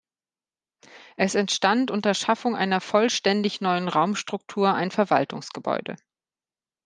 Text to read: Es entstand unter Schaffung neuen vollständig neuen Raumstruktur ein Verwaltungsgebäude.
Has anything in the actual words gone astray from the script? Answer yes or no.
yes